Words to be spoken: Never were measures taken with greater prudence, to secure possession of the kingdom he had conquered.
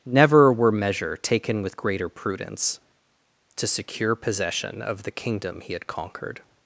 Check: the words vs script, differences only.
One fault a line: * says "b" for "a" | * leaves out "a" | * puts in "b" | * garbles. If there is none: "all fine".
* says "measure" for "measures"